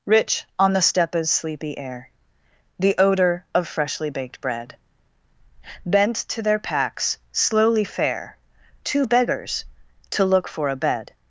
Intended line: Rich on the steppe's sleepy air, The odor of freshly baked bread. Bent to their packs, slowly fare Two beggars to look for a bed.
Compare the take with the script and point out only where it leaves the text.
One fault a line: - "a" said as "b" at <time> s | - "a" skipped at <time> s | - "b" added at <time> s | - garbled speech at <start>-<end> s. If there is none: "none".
none